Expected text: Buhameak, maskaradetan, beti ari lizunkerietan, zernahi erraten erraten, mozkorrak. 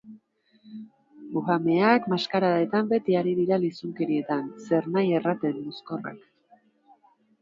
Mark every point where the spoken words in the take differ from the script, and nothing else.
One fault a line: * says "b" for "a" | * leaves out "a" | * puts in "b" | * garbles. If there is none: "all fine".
* puts in "dira"
* leaves out "erraten"